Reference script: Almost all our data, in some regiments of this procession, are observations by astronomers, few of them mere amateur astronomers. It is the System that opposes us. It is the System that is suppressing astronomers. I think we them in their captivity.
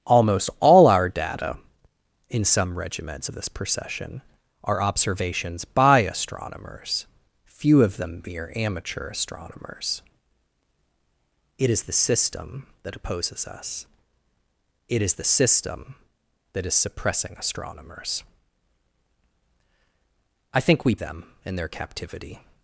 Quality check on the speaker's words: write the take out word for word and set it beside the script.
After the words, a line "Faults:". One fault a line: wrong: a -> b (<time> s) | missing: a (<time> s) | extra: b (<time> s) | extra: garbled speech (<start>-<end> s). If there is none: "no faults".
Almost all our data, in some regiments of this procession, are observations by astronomers, few of them mere amateur astronomers. It is the System that opposes us. It is the System that is suppressing astronomers. I think we them in their captivity.
Faults:
no faults